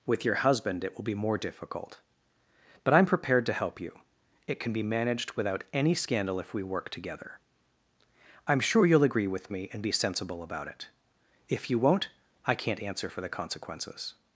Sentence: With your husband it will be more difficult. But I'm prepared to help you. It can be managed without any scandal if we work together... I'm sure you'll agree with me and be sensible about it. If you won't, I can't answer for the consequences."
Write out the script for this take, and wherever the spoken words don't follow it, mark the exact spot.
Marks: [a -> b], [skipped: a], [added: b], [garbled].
With your husband it will be more difficult. But I'm prepared to help you. It can be managed without any scandal if we work together... I'm sure you'll agree with me and be sensible about it. If you won't, I can't answer for the consequences."